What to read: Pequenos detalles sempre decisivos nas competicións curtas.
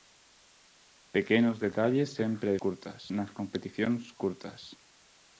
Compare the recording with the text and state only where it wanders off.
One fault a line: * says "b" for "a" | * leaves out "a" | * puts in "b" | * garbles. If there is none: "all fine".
* says "curtas" for "decisivos"